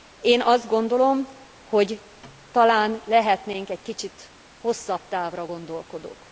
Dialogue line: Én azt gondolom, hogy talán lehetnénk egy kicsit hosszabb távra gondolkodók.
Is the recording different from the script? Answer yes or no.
no